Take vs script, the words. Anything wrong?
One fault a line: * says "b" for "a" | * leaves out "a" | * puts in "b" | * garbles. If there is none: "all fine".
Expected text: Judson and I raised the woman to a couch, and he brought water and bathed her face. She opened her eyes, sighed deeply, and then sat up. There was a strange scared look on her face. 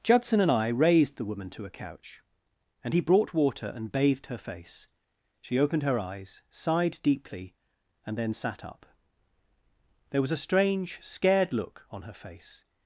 all fine